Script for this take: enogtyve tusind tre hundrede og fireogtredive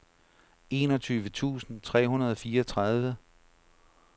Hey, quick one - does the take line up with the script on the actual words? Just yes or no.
yes